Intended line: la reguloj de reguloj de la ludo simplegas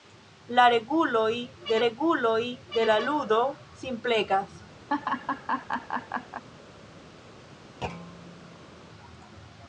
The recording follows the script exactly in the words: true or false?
true